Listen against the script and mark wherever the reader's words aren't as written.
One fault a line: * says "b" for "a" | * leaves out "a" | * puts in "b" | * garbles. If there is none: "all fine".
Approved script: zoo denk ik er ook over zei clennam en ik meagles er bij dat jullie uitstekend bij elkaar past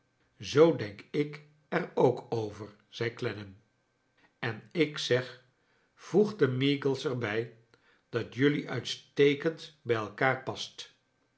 * puts in "zeg voegde"